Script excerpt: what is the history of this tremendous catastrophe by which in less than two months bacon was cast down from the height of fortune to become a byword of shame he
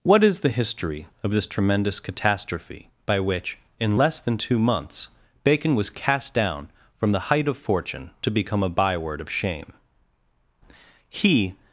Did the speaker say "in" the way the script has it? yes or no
yes